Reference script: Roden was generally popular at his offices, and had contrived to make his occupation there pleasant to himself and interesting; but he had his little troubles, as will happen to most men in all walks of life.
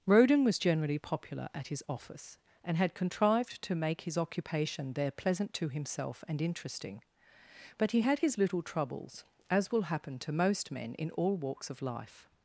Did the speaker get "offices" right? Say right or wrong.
wrong